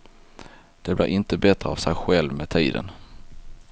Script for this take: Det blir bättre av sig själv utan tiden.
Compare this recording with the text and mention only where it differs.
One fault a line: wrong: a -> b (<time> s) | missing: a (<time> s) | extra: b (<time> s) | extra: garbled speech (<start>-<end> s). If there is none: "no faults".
extra: inte (1.1 s)
wrong: utan -> med (2.3 s)